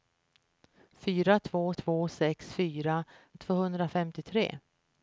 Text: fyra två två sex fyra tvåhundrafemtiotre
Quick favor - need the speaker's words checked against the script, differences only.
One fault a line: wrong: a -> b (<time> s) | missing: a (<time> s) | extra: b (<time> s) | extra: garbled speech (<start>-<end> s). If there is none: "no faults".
no faults